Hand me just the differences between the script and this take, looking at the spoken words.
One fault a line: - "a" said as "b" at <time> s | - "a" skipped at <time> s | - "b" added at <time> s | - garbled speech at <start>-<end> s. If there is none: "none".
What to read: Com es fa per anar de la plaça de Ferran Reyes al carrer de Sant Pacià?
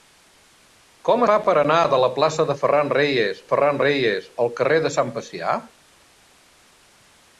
- "es" skipped at 1.2 s
- "Ferran Reyes" added at 3.5 s